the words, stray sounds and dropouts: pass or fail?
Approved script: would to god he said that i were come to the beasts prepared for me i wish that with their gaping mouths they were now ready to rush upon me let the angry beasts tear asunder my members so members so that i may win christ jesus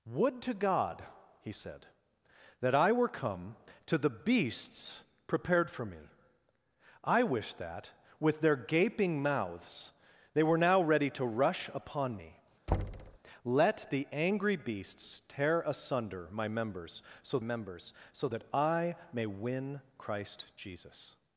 fail